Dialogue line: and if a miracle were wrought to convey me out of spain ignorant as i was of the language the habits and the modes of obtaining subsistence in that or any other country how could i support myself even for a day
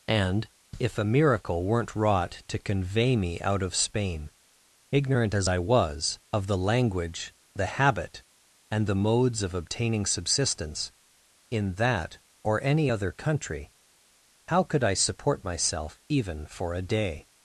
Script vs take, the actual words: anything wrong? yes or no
yes